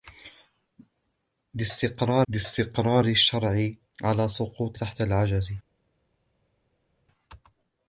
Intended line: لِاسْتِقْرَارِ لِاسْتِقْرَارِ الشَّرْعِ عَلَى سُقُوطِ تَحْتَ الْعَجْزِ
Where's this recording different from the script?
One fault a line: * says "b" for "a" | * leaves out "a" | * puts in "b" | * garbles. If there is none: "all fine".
all fine